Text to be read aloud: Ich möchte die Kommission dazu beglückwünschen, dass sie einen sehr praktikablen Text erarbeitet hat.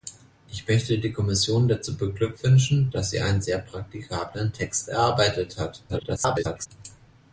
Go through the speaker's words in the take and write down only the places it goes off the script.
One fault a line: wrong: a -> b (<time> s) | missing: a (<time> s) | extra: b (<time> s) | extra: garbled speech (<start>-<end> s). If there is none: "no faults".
extra: garbled speech (5.9-6.7 s)